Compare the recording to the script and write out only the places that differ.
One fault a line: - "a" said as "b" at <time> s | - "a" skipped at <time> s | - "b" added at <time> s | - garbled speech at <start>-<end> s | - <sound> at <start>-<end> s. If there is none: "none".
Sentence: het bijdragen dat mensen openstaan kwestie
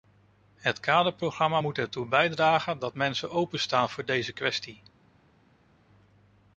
- "kaderprogramma moet ertoe" added at 0.8 s
- "voor deze" added at 3.9 s